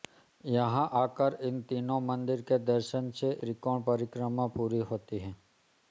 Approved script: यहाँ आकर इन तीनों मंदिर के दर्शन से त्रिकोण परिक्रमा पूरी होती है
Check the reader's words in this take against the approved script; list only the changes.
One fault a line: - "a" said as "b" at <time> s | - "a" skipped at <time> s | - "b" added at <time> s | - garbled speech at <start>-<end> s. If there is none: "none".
none